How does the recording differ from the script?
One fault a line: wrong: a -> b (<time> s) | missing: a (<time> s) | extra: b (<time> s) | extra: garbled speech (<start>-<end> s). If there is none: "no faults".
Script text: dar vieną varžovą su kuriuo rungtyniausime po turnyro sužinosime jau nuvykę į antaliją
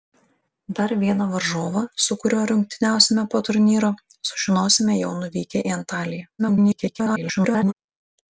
extra: garbled speech (6.4-7.7 s)